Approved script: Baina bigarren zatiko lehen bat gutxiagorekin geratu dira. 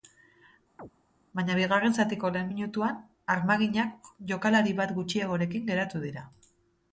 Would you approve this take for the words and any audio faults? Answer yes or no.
no